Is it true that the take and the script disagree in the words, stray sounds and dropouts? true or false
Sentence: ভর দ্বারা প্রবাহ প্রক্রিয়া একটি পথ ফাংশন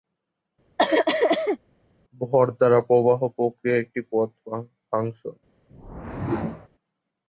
true